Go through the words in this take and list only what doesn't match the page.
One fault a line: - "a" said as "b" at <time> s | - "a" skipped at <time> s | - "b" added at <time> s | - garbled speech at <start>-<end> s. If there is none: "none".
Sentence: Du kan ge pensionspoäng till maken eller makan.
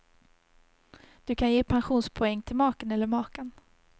none